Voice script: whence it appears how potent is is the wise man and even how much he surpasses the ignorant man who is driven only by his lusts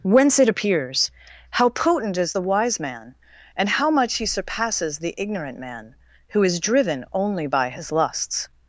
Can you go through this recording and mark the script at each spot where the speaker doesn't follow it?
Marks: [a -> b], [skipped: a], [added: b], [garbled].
whence it appears how potent is [skipped: is] the wise man and [skipped: even] how much he surpasses the ignorant man who is driven only by his lusts